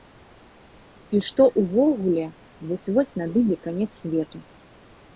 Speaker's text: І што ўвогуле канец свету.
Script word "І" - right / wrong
right